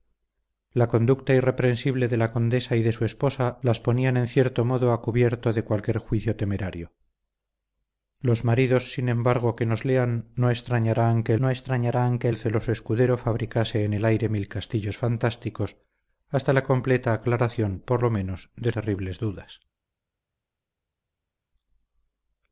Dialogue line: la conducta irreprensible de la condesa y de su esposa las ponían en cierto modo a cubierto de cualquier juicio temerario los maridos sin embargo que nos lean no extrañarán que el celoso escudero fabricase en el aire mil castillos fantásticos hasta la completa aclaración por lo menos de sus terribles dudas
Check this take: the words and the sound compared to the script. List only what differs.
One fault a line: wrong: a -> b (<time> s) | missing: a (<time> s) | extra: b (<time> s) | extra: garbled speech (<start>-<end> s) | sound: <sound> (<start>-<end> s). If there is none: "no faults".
extra: no extrañarán que (11.4 s)
missing: sus (18.7 s)